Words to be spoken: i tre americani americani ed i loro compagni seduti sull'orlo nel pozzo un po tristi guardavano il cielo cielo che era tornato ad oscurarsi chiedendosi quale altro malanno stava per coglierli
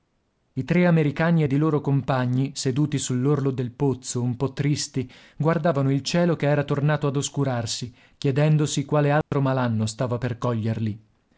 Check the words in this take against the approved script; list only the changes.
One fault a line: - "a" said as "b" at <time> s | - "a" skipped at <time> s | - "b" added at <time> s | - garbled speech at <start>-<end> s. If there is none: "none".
- "americani" skipped at 1.4 s
- "nel" said as "del" at 3.5 s
- "cielo" skipped at 6.4 s